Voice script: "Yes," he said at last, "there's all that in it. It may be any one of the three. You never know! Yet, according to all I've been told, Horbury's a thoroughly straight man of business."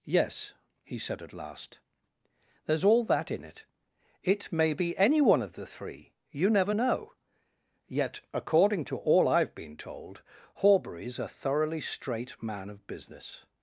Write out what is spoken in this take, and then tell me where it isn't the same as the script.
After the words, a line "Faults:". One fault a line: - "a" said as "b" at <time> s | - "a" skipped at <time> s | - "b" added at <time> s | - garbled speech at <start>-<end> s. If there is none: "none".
"Yes," he said at last, "there's all that in it. It may be any one of the three. You never know! Yet, according to all I've been told, Horbury's a thoroughly straight man of business."
Faults:
none